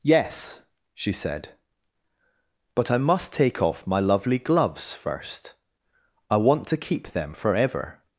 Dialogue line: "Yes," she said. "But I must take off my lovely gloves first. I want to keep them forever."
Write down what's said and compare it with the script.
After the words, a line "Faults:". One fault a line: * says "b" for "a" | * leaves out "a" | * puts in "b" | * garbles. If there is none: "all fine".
"Yes," she said. "But I must take off my lovely gloves first. I want to keep them forever."
Faults:
all fine